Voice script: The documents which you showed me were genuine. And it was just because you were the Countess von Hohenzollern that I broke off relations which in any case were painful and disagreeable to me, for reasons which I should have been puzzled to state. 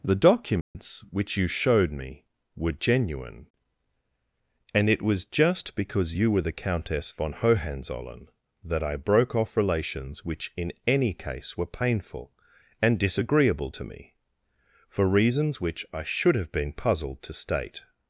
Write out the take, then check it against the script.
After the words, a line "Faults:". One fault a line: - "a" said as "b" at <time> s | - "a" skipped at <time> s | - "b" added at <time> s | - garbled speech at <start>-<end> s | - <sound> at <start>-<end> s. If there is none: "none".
The documents which you showed me were genuine. And it was just because you were the Countess von Hohenzollern that I broke off relations which in any case were painful and disagreeable to me, for reasons which I should have been puzzled to state.
Faults:
- dropout at 0.6-0.8 s